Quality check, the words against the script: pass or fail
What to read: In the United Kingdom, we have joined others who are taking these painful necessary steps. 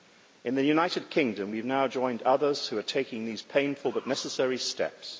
fail